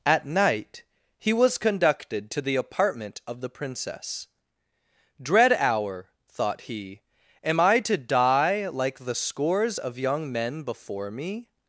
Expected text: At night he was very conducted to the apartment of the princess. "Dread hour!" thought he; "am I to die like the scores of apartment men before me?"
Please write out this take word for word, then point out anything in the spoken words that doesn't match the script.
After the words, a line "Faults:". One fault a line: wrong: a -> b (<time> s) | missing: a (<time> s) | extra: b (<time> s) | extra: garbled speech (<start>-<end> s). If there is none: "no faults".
At night he was conducted to the apartment of the princess. "Dread hour!" thought he; "am I to die like the scores of young men before me?"
Faults:
missing: very (1.6 s)
wrong: apartment -> young (10.0 s)